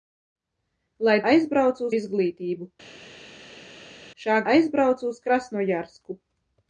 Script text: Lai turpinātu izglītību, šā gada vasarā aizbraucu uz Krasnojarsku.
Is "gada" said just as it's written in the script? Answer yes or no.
no